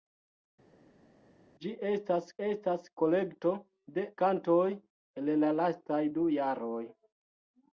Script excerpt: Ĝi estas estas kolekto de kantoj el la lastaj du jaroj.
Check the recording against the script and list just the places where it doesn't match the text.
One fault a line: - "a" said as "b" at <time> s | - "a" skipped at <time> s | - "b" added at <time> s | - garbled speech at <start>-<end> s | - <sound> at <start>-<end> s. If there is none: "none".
none